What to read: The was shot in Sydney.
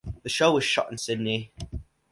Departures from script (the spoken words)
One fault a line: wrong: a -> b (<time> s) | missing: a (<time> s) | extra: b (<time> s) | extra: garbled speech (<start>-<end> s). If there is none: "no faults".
extra: show (0.3 s)